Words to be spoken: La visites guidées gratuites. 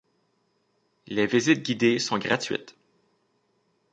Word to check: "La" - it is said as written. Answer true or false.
false